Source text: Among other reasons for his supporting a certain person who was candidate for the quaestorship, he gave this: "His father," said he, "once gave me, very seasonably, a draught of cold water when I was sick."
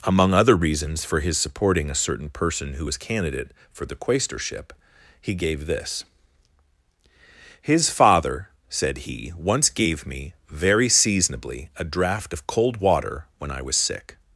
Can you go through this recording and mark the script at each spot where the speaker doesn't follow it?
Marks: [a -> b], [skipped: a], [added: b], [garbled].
Among other reasons for his supporting a certain person who was candidate for the quaestorship, he gave this: "His father," said he, "once gave me, very seasonably, a draught of cold water when I was sick."